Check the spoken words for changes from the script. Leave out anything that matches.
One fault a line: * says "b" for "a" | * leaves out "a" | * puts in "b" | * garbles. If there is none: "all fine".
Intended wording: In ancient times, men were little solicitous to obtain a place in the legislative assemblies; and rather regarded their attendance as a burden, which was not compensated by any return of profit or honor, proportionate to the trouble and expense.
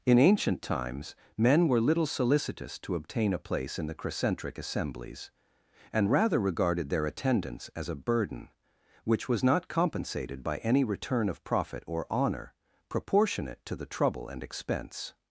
* says "crescentric" for "legislative"